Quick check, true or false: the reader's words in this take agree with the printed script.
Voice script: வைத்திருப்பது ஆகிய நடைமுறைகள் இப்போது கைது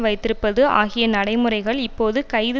true